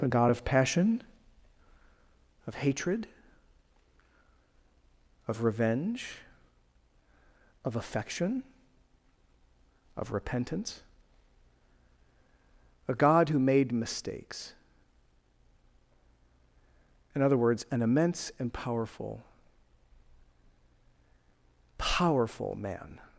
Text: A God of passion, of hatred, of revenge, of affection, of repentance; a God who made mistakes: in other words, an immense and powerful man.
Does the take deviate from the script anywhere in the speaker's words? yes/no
yes